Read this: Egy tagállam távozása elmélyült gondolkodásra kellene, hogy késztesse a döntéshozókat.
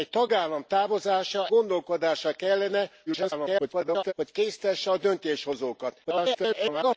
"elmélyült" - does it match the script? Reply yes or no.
no